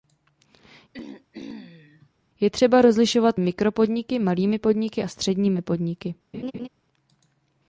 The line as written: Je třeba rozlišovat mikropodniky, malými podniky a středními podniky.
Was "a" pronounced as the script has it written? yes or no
yes